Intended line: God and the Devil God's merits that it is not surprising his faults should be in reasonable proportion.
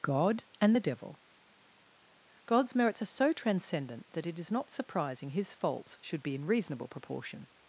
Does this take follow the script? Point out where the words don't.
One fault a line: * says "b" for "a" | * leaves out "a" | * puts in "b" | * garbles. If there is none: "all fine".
* puts in "are so transcendent"